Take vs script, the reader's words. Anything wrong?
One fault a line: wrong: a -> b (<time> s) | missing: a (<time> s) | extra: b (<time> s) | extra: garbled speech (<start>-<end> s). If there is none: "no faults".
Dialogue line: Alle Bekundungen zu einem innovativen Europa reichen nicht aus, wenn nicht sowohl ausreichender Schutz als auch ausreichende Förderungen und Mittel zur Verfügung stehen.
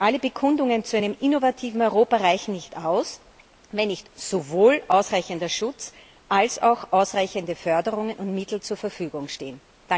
no faults